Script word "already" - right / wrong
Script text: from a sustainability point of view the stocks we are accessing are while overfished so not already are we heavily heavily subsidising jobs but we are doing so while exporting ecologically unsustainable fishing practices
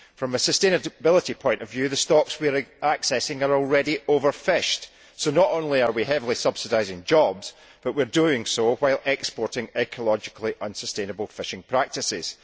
wrong